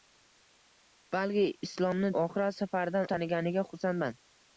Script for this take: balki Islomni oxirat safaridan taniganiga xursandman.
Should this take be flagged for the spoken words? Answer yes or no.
no